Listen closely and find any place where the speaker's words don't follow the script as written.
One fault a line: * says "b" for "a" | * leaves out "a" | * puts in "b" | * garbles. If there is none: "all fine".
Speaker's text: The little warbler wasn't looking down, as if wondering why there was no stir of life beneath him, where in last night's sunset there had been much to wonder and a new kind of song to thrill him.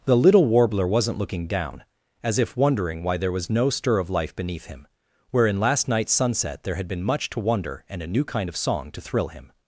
all fine